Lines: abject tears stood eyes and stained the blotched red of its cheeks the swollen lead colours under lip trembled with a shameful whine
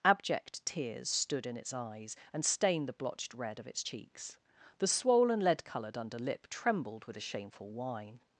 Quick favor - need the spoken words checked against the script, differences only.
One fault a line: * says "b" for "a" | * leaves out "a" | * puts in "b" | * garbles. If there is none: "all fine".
* puts in "in its"
* says "coloured" for "colours"